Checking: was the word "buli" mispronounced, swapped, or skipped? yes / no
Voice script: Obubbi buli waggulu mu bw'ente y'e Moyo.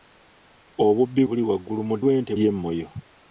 no